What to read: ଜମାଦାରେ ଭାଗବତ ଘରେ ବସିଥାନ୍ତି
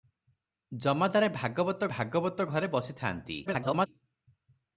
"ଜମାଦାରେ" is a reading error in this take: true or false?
false